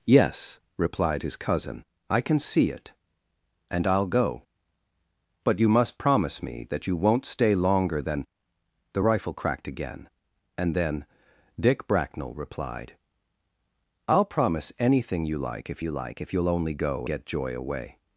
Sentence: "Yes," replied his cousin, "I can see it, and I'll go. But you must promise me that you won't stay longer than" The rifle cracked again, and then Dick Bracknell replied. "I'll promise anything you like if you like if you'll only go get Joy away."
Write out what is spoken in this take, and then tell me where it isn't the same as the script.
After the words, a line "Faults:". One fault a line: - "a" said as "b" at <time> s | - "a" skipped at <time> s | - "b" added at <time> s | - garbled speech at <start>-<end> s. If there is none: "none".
"Yes," replied his cousin, "I can see it, and I'll go. But you must promise me that you won't stay longer than" The rifle cracked again, and then Dick Bracknell replied. "I'll promise anything you like if you like if you'll only go get Joy away."
Faults:
none